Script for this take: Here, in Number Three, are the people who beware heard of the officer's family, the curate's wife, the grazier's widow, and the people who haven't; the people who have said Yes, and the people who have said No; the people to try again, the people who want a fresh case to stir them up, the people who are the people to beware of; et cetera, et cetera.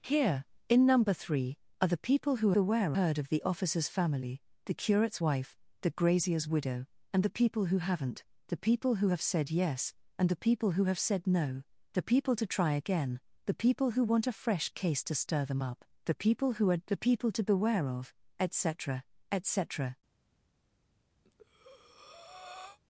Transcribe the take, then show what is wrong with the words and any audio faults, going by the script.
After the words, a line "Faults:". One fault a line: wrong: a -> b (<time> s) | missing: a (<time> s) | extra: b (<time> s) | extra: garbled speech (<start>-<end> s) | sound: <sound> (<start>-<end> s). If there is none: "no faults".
Here, in Number Three, are the people who beware heard of the officer's family, the curate's wife, the grazier's widow, and the people who haven't; the people who have said Yes, and the people who have said No; the people to try again, the people who want a fresh case to stir them up, the people who are the people to beware of; et cetera, et cetera.
Faults:
sound: breath (21.2-22.8 s)